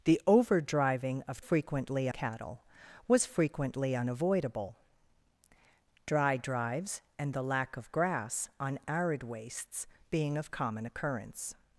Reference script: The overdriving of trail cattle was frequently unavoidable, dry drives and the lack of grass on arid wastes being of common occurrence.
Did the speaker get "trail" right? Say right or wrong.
wrong